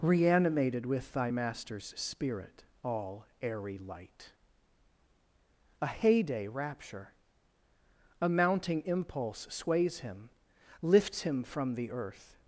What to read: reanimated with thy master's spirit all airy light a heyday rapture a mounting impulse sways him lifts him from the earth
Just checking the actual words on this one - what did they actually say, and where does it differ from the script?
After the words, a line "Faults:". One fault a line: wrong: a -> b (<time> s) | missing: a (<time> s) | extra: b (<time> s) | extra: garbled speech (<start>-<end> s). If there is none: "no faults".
reanimated with thy master's spirit all airy light a heyday rapture a mounting impulse sways him lifts him from the earth
Faults:
no faults